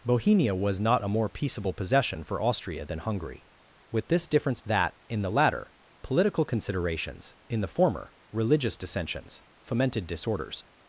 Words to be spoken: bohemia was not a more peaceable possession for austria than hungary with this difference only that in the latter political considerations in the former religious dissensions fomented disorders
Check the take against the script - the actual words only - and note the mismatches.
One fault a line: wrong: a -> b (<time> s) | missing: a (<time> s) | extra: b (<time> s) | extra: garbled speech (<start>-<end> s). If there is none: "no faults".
missing: only (4.6 s)